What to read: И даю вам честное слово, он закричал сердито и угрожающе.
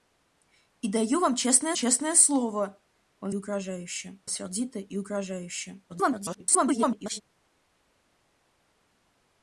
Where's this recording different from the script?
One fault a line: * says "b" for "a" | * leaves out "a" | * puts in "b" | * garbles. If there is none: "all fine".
* puts in "честное"
* says "угрожающе" for "закричал"
* garbles